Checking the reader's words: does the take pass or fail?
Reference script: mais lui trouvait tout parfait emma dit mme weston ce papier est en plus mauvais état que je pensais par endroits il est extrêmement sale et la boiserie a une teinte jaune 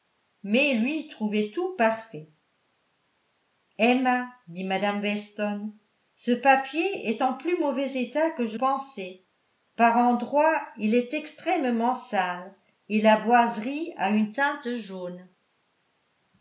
pass